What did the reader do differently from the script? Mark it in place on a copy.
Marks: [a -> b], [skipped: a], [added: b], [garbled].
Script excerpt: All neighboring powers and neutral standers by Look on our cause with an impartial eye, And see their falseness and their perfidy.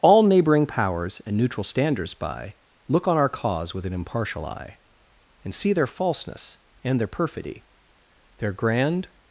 All neighboring powers and neutral standers by Look on our cause with an impartial eye, And see their falseness and their perfidy. [added: Their grand]